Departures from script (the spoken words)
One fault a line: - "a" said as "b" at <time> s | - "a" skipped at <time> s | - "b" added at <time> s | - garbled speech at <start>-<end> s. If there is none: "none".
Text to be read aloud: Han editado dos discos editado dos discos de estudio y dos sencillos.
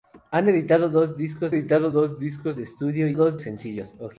none